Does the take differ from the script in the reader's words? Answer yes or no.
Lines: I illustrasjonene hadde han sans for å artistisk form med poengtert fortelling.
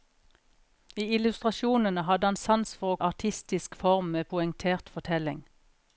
no